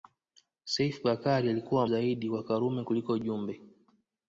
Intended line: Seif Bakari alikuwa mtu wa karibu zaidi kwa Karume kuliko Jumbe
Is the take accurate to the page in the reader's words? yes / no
no